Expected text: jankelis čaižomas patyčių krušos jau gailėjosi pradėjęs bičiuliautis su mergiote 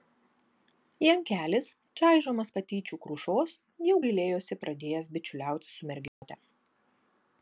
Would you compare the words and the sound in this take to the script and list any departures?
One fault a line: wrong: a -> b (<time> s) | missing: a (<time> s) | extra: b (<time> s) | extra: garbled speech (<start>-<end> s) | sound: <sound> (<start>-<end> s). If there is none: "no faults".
sound: dropout (6.1-6.2 s)